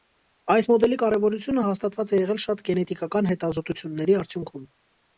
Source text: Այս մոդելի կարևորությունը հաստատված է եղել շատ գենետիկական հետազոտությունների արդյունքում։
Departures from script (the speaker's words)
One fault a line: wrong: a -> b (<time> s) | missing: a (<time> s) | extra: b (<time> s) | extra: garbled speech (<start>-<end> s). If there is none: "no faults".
no faults